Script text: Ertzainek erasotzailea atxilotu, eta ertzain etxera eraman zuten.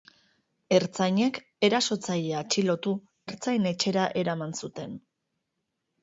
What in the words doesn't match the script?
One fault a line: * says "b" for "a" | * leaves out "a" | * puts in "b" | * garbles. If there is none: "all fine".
* leaves out "eta"